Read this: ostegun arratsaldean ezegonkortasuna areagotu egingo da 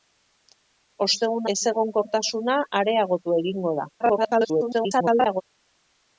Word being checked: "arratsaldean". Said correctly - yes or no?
no